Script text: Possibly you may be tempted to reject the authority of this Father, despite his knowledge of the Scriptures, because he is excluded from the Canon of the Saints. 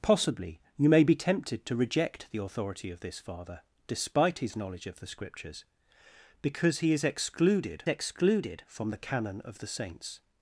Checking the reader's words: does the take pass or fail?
fail